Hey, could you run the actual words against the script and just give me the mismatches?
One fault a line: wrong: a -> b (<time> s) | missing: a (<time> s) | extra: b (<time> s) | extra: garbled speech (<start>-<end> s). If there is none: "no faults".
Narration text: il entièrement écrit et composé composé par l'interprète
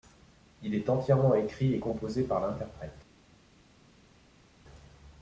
extra: est (0.7 s)
missing: composé (2.2 s)